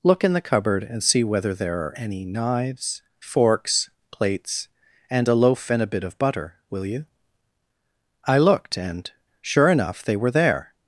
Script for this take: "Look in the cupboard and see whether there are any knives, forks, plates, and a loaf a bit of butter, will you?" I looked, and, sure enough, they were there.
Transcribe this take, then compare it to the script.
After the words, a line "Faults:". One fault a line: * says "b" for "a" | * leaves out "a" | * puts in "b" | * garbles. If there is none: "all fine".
"Look in the cupboard and see whether there are any knives, forks, plates, and a loaf and a bit of butter, will you?" I looked, and, sure enough, they were there.
Faults:
* puts in "and"